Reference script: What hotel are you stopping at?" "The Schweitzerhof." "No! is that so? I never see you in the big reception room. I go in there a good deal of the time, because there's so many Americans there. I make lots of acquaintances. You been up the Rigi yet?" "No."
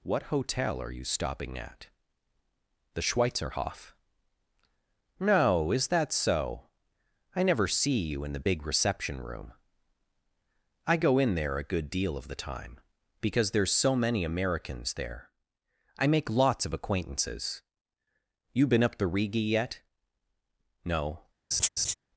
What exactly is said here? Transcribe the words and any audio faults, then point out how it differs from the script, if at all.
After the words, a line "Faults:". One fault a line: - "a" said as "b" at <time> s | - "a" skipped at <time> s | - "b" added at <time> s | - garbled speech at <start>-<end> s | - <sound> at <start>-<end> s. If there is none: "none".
What hotel are you stopping at?" "The Schweitzerhof." "No! is that so? I never see you in the big reception room. I go in there a good deal of the time, because there's so many Americans there. I make lots of acquaintances. You been up the Rigi yet?" "No."
Faults:
- laugh at 21.5-21.9 s